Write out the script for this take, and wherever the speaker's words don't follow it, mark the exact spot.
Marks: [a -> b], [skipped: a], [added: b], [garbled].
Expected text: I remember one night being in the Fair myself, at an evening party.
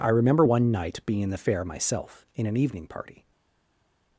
I remember one night being in the Fair myself, [at -> in] an evening party.